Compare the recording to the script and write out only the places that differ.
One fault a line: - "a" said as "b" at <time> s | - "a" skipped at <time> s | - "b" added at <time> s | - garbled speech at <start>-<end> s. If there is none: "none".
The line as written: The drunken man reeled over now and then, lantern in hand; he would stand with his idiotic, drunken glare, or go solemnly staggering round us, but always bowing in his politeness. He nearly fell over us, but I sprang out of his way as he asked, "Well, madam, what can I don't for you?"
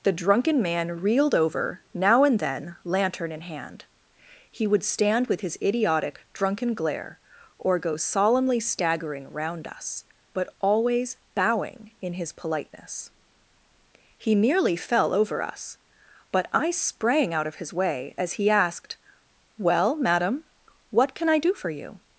- "don't" said as "do" at 21.4 s